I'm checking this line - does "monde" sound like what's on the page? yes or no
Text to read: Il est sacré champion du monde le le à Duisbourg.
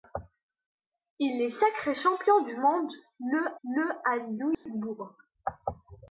yes